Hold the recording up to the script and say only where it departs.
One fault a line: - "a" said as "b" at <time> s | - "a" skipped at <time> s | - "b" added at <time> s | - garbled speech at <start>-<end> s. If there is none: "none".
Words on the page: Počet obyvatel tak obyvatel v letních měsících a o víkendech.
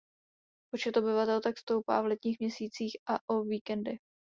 - "obyvatel" said as "stoupá" at 1.6 s